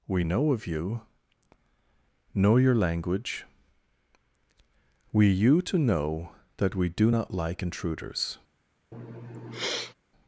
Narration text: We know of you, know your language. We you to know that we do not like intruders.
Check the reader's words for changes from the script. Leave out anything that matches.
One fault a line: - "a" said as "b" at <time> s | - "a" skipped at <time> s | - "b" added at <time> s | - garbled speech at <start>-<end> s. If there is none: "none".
none